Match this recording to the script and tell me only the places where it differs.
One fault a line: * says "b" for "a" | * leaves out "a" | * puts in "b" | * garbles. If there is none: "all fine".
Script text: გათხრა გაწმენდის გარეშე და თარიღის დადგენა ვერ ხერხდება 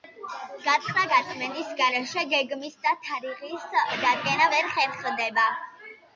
* puts in "გეგმის"